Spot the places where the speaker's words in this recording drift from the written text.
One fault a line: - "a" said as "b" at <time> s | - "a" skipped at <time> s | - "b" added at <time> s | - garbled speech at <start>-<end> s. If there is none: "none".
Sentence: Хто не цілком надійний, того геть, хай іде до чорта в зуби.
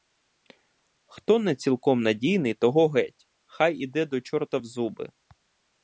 none